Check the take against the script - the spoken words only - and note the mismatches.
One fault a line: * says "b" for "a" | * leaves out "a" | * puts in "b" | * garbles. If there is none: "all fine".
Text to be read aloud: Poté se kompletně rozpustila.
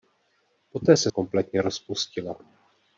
all fine